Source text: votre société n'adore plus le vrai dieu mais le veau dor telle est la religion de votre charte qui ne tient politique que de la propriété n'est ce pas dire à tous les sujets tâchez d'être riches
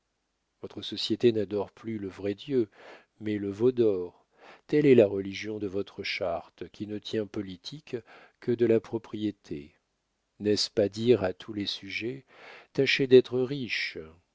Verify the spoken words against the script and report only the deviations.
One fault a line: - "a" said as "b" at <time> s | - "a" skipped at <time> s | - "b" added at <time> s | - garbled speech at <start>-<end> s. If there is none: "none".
none